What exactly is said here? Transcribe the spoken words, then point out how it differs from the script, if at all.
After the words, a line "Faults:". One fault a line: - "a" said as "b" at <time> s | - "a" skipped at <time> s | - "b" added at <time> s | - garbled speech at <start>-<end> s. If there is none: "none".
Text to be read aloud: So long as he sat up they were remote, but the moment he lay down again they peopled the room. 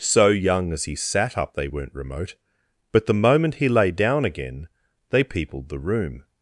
So young as he sat up they weren't remote, but the moment he lay down again they peopled the room.
Faults:
- "long" said as "young" at 0.3 s
- "were" said as "weren't" at 1.7 s